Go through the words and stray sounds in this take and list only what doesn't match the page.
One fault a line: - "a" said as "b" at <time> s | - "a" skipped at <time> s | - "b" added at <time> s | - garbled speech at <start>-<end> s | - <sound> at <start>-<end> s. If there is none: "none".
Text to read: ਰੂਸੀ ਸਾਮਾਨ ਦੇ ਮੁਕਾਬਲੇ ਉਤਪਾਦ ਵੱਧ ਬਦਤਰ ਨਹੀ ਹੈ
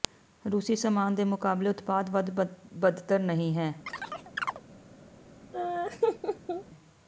- chirp at 3.9-4.6 s
- laugh at 5.5-6.6 s